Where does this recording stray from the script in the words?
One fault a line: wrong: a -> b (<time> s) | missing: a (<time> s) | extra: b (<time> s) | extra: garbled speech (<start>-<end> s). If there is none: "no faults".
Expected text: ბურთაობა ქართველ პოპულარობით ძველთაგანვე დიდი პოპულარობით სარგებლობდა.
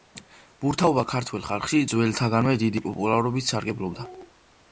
wrong: პოპულარობით -> ხალხში (1.5 s)